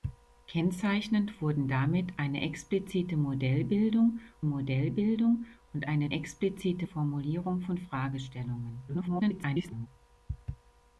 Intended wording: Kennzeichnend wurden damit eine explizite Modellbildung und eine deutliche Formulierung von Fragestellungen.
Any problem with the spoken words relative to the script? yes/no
yes